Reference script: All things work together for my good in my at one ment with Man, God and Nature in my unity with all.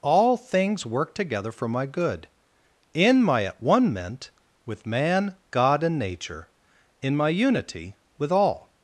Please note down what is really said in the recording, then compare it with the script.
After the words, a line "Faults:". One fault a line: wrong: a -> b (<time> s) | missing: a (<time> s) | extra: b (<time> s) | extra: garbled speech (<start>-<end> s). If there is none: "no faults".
All things work together for my good in my at one ment with Man, God and Nature in my unity with all.
Faults:
no faults